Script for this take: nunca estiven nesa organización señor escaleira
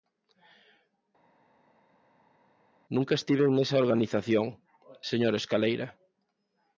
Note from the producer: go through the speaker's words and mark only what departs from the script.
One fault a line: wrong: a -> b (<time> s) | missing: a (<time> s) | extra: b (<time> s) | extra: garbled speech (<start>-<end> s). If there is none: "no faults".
no faults